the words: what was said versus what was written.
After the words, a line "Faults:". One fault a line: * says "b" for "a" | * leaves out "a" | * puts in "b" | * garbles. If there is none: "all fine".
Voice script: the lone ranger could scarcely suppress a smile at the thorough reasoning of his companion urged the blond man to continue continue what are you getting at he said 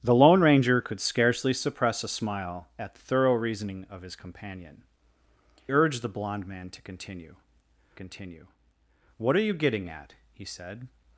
the lone ranger could scarcely suppress a smile at the thorough reasoning of his companion urged the blond man to continue continue what are you getting at he said
Faults:
all fine